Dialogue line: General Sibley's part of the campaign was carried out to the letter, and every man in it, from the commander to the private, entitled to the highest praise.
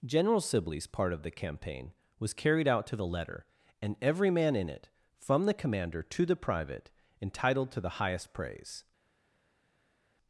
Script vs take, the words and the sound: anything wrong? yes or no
no